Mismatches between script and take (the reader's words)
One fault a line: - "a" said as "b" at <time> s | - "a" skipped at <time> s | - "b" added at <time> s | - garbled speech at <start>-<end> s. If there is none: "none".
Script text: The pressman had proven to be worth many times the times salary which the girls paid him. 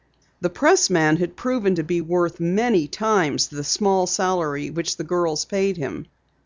- "times" said as "small" at 3.6 s